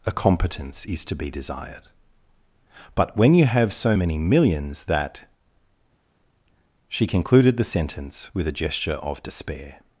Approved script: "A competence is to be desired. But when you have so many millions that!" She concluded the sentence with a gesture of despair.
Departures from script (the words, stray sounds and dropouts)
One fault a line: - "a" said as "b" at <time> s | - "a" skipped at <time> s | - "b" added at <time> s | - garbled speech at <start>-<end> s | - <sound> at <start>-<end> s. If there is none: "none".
none